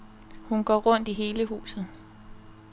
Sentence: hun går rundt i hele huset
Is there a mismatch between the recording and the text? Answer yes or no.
no